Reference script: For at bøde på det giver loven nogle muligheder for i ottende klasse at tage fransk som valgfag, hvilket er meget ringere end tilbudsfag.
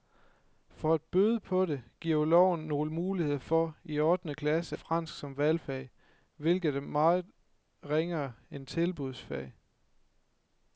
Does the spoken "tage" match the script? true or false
false